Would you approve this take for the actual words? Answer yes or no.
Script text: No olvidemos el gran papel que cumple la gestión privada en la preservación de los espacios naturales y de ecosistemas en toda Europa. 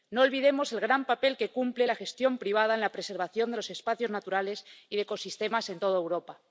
yes